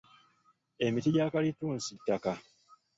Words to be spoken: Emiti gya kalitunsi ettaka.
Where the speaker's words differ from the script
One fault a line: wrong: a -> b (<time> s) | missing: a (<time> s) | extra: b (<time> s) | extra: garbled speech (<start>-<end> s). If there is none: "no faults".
no faults